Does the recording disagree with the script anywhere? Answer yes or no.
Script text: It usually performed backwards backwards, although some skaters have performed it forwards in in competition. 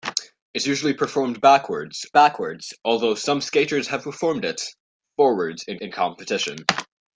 no